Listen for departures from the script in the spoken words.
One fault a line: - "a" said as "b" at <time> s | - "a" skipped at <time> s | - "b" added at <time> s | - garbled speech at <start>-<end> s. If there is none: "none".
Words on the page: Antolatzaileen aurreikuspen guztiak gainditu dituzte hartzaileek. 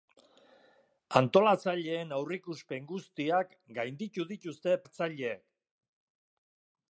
none